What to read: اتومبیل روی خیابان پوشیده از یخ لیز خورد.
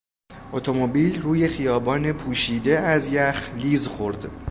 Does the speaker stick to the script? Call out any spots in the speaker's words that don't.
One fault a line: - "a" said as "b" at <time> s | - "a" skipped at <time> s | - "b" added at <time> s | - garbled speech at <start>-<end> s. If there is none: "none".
none